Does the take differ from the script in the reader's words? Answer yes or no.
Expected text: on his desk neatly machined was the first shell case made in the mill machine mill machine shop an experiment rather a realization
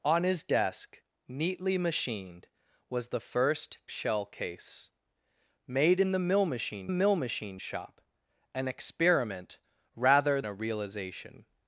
no